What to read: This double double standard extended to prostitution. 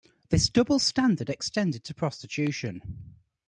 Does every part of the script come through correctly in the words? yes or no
no